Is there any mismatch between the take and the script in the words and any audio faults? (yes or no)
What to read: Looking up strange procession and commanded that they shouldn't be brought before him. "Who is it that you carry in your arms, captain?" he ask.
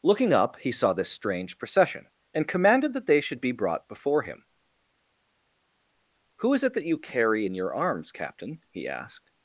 yes